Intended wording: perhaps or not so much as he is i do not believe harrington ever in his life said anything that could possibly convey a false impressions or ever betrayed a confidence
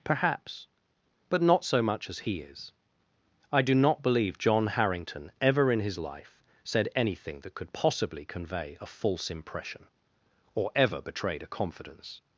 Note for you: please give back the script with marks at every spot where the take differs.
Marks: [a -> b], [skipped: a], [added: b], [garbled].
perhaps [or -> but] not so much as he is i do not believe [added: john] harrington ever in his life said anything that could possibly convey a false [impressions -> impression] or ever betrayed a confidence